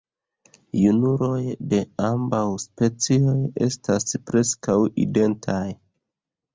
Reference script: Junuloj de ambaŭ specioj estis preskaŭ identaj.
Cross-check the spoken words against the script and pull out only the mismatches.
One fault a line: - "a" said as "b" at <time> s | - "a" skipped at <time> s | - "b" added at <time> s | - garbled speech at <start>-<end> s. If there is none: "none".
- "estis" said as "estas" at 3.7 s